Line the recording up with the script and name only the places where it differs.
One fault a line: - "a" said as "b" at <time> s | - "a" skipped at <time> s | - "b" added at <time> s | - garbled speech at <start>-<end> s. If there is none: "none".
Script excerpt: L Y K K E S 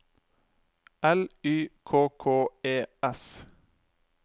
none